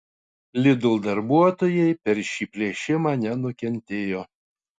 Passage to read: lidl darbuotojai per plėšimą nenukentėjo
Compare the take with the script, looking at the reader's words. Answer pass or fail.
fail